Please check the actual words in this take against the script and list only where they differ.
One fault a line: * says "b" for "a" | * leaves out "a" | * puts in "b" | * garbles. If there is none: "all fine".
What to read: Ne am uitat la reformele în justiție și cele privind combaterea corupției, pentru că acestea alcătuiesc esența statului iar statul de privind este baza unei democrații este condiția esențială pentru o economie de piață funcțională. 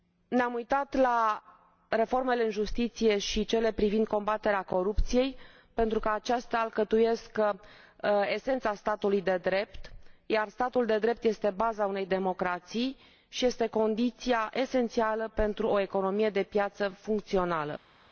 * puts in "de drept"
* says "drept" for "privind"
* puts in "și"